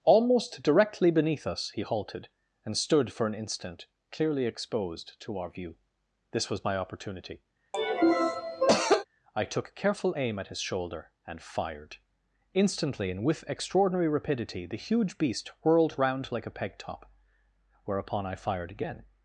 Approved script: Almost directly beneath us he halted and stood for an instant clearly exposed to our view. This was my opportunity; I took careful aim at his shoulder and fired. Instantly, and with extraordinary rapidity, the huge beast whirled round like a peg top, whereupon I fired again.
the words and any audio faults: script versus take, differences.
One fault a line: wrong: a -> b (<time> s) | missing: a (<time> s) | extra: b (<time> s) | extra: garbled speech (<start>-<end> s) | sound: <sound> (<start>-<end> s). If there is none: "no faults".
sound: cough (7.7-9.0 s)